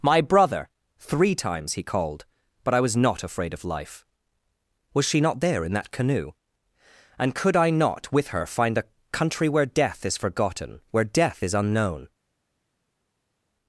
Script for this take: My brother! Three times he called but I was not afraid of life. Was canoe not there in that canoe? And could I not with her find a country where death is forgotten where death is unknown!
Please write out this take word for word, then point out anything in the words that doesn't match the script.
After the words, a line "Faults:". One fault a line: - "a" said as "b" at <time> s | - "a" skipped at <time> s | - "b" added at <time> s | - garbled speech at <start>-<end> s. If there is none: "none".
My brother! Three times he called but I was not afraid of life. Was she not there in that canoe? And could I not with her find a country where death is forgotten where death is unknown!
Faults:
- "canoe" said as "she" at 5.0 s